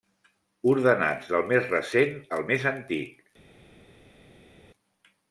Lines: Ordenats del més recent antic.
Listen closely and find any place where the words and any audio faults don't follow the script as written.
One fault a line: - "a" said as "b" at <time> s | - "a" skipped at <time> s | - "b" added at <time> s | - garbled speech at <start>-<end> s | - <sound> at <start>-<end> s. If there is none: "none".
- "al més" added at 2.4 s